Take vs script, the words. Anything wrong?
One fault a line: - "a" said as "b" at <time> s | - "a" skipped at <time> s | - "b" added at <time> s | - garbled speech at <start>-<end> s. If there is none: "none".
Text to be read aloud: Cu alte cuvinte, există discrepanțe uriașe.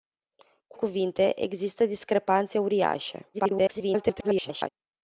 - "alte" skipped at 0.8 s
- garbled speech at 3.3-4.7 s